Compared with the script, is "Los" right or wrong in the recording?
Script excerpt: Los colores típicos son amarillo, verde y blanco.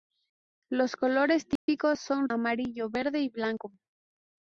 right